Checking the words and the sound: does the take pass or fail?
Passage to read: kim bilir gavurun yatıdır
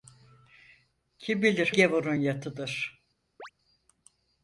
fail